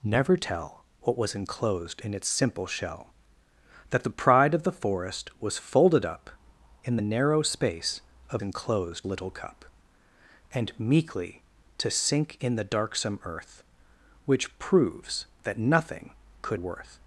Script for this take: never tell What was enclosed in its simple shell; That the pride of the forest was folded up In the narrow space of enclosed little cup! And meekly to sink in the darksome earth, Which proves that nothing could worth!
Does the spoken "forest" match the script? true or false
true